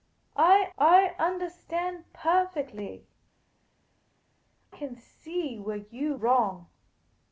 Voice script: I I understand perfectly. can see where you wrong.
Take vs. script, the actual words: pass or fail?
pass